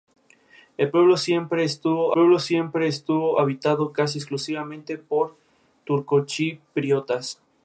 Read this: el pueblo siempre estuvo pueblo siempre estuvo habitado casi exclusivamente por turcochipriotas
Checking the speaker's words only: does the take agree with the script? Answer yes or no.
yes